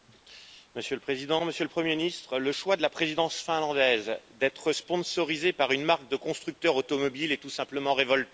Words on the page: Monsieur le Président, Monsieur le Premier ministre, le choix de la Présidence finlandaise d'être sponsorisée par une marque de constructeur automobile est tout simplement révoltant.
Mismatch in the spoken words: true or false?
false